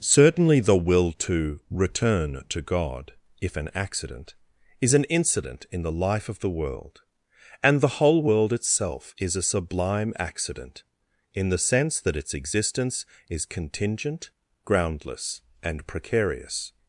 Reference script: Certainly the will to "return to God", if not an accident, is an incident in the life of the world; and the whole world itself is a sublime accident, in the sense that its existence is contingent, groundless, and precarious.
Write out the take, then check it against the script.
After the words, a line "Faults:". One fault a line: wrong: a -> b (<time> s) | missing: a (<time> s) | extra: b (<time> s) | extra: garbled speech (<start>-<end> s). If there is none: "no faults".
Certainly the will to "return to God", if an accident, is an incident in the life of the world; and the whole world itself is a sublime accident, in the sense that its existence is contingent, groundless, and precarious.
Faults:
missing: not (3.5 s)